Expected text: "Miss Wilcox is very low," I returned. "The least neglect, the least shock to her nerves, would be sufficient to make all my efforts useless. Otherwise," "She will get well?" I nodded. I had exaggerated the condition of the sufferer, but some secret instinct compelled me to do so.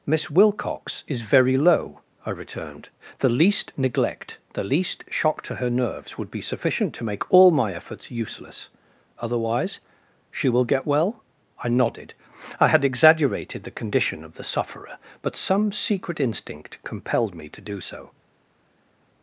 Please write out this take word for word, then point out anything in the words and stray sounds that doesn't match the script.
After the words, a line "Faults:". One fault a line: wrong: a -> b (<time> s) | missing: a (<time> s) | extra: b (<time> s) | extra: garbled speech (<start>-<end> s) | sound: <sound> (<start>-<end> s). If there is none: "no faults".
"Miss Wilcox is very low," I returned. "The least neglect, the least shock to her nerves, would be sufficient to make all my efforts useless. Otherwise," "She will get well?" I nodded. I had exaggerated the condition of the sufferer, but some secret instinct compelled me to do so.
Faults:
no faults